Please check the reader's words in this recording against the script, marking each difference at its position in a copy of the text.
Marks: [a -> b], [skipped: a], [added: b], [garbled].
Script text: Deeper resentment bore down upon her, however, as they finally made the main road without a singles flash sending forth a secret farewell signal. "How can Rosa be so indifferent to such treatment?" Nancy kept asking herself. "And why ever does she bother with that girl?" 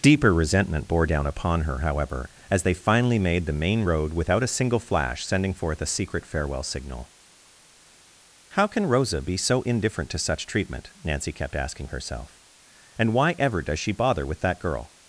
Deeper resentment bore down upon her, however, as they finally made the main road without a [singles -> single] flash sending forth a secret farewell signal. "How can Rosa be so indifferent to such treatment?" Nancy kept asking herself. "And why ever does she bother with that girl?"